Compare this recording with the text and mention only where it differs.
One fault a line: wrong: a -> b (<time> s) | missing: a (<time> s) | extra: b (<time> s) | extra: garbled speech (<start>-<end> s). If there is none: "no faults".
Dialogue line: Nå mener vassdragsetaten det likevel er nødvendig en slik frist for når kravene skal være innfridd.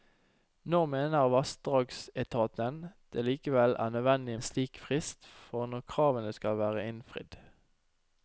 no faults